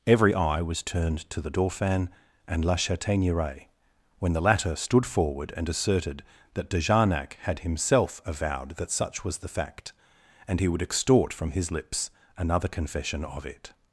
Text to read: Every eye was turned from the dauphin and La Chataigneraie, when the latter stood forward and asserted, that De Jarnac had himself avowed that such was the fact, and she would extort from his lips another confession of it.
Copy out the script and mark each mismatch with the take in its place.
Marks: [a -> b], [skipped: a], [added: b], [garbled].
Every eye was turned [from -> to] the dauphin and La Chataigneraie, when the latter stood forward and asserted, that De Jarnac had himself avowed that such was the fact, and [she -> he] would extort from his lips another confession of it.